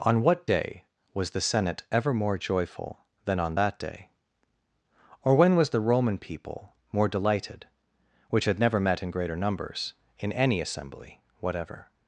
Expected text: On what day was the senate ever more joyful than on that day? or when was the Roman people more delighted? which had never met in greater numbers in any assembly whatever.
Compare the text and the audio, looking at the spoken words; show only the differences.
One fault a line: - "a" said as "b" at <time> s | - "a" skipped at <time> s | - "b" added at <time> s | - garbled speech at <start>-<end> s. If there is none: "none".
none